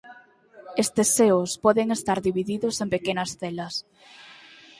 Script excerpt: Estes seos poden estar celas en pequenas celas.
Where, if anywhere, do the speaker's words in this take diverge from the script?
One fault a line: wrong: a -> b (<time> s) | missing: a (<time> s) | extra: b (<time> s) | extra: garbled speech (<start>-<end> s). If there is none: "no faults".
wrong: celas -> divididos (2.3 s)